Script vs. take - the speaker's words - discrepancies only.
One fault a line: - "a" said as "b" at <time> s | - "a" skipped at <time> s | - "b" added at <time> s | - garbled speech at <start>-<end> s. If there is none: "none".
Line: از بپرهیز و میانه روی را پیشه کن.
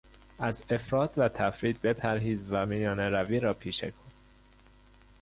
- "افراط و تفریط" added at 0.7 s